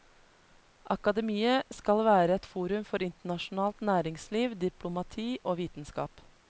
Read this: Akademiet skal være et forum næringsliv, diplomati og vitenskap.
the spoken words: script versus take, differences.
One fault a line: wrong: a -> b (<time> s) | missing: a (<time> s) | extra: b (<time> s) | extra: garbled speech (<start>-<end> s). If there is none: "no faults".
extra: for internasjonalt (2.9 s)